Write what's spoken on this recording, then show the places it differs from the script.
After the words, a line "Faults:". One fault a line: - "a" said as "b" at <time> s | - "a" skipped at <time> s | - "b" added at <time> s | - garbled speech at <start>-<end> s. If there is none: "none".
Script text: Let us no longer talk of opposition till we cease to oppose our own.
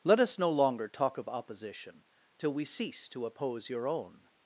Let us no longer talk of opposition till we cease to oppose your own.
Faults:
- "our" said as "your" at 3.7 s